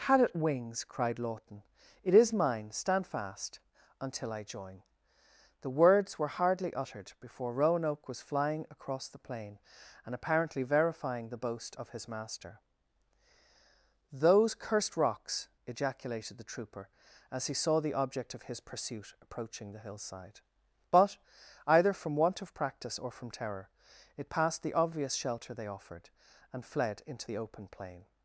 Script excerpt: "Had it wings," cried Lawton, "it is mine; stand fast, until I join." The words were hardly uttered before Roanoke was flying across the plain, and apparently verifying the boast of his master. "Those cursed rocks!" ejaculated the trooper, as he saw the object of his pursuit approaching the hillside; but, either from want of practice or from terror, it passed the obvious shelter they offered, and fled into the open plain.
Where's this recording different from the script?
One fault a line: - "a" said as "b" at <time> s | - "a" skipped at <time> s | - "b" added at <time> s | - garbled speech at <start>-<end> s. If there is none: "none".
none